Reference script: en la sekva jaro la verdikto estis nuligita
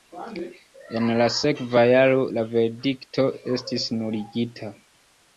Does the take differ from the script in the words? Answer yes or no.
no